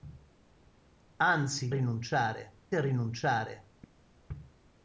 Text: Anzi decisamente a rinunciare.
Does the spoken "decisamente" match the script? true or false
false